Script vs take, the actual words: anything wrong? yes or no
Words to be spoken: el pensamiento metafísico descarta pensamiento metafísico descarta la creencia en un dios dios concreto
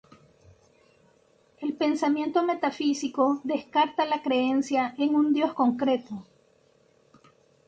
yes